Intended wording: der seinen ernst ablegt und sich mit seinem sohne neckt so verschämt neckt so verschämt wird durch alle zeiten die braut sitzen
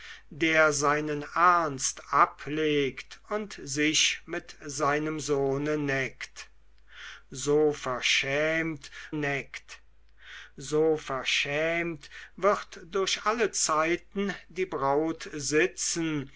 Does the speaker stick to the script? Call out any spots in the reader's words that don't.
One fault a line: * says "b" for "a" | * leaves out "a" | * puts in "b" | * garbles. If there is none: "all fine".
all fine